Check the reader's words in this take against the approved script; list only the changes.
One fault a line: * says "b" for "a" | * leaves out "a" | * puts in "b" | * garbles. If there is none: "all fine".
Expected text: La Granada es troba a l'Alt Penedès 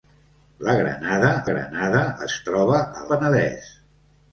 * puts in "Granada"
* leaves out "l'Alt"